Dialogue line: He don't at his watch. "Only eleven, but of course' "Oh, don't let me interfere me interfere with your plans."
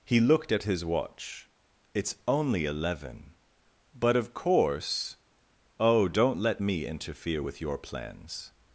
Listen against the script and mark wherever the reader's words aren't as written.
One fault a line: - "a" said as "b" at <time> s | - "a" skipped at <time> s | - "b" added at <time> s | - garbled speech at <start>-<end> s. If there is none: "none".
- "don't" said as "looked" at 0.2 s
- "It's" added at 1.9 s
- "me interfere" skipped at 7.4 s